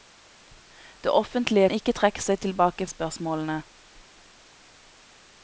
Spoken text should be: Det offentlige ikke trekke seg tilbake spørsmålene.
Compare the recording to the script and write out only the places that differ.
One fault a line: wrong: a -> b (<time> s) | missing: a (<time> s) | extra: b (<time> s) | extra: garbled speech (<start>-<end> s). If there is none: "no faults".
no faults